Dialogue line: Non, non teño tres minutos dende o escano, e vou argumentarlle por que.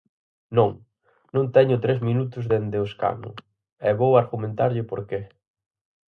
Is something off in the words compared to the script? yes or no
no